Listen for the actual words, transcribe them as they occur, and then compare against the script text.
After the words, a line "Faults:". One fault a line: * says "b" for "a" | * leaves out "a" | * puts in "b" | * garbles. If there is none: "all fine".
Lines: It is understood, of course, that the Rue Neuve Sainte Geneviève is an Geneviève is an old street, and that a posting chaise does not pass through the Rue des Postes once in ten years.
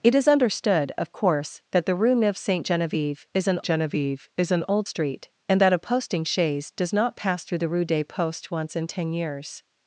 It is understood, of course, that the Rue Neuve Sainte Geneviève is an Geneviève is an old street, and that a posting chaise does not pass through the Rue des Postes once in ten years.
Faults:
all fine